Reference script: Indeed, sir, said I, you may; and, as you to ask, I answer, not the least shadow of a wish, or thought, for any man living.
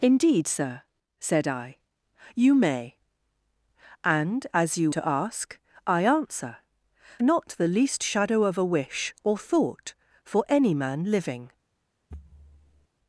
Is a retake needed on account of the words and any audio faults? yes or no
yes